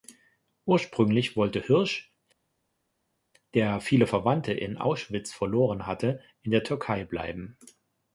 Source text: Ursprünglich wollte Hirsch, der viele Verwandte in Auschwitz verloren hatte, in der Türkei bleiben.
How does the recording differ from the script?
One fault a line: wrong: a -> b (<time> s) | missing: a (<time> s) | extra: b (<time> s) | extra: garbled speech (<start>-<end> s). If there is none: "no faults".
no faults